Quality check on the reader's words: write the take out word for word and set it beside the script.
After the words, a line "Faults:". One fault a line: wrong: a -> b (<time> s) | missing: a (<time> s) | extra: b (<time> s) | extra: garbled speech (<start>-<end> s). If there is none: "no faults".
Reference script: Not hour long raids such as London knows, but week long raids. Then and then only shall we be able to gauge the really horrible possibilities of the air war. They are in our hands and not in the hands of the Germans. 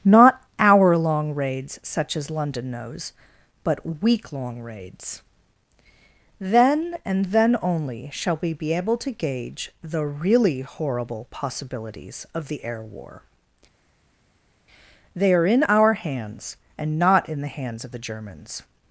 Not hour long raids such as London knows, but week long raids. Then and then only shall we be able to gauge the really horrible possibilities of the air war. They are in our hands and not in the hands of the Germans.
Faults:
no faults